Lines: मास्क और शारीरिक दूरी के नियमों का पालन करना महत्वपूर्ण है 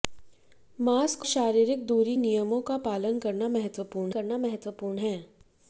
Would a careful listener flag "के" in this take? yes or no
yes